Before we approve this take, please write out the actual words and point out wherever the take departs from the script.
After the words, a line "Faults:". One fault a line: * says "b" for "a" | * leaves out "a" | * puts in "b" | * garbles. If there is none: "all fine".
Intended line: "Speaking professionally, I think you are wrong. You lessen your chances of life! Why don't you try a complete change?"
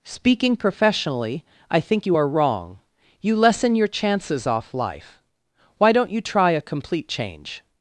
"Speaking professionally, I think you are wrong. You lessen your chances off life! Why don't you try a complete change?"
Faults:
* says "off" for "of"